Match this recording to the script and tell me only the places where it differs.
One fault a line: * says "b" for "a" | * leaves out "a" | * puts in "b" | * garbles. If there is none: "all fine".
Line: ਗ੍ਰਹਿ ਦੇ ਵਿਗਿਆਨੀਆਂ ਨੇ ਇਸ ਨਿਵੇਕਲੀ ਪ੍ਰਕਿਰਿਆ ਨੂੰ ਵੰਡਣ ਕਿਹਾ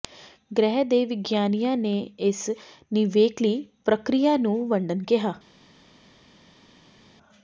all fine